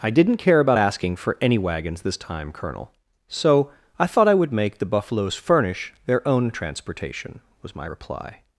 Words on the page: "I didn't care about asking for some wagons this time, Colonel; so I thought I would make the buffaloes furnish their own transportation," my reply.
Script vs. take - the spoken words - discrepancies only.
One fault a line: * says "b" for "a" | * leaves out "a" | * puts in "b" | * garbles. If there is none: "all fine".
* says "any" for "some"
* puts in "was"